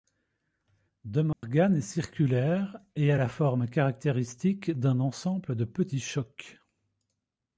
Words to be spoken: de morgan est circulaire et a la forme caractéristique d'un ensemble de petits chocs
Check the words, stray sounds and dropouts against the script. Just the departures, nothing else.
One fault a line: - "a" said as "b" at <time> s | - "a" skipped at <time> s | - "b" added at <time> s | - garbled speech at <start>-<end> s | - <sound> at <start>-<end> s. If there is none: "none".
- dropout at 1.3-1.4 s